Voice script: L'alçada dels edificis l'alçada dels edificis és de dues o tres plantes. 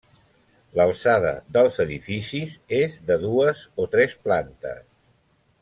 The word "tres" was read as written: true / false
true